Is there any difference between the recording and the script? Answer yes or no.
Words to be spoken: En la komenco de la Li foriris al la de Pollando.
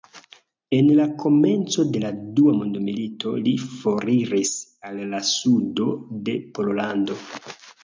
yes